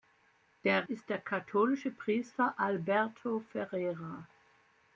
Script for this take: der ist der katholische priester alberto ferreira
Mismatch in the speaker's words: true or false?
false